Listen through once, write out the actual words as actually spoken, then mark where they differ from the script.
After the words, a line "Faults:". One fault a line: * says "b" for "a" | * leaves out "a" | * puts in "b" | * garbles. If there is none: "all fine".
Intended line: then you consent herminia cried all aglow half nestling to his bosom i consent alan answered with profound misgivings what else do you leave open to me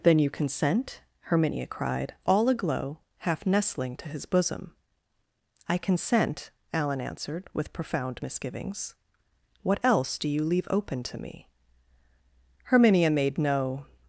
then you consent herminia cried all aglow half nestling to his bosom i consent alan answered with profound misgivings what else do you leave open to me herminia made no
Faults:
* puts in "herminia made no"